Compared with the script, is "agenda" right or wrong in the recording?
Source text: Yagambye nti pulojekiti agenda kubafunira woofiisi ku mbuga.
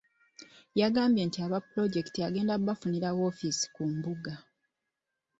right